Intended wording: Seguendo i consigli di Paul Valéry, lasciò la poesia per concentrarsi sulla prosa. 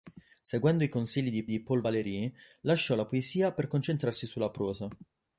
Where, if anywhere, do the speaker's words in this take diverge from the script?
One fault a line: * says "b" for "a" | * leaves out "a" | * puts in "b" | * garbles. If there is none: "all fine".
* puts in "di"